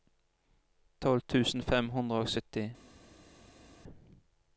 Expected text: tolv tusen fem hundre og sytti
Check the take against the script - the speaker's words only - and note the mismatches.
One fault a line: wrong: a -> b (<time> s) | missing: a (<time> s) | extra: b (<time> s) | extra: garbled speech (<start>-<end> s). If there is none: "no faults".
no faults